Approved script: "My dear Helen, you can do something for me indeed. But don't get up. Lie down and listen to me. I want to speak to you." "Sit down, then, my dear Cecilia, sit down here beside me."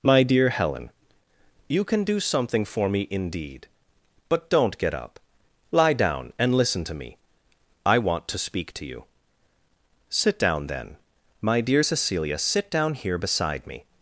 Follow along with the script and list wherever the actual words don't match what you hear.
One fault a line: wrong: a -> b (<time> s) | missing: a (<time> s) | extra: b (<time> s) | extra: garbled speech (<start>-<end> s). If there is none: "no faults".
no faults